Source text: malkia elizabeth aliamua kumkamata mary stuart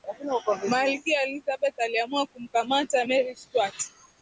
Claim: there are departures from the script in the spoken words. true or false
false